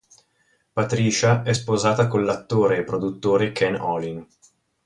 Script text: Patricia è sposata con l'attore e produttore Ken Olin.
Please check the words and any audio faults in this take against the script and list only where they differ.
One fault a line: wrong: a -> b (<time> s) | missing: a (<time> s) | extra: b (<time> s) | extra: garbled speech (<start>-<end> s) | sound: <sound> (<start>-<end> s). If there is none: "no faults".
no faults